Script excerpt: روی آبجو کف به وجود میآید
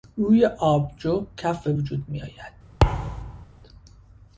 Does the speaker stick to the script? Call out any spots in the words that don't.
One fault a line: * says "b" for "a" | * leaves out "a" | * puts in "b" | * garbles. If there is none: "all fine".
all fine